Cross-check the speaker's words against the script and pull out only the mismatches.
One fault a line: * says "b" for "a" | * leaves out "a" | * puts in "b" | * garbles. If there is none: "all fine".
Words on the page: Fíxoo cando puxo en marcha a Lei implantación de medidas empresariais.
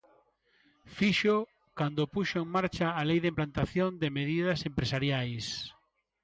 * puts in "de"